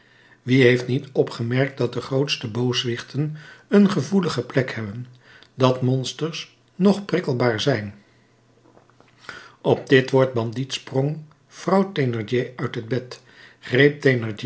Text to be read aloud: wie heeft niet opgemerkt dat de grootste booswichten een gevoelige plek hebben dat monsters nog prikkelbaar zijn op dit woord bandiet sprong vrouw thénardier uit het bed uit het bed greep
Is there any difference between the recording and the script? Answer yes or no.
yes